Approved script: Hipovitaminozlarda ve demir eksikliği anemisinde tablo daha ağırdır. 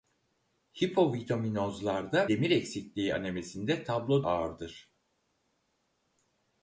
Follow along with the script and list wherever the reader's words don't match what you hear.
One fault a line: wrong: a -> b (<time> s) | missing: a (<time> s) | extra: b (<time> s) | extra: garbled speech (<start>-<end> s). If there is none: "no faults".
missing: ve (2.3 s)
missing: daha (4.2 s)